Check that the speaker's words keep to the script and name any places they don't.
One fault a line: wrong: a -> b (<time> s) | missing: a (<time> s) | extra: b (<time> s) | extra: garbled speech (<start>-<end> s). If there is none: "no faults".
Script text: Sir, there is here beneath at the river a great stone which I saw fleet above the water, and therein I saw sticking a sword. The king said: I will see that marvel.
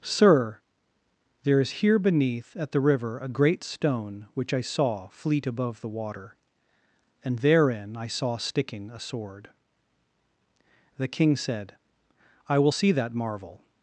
no faults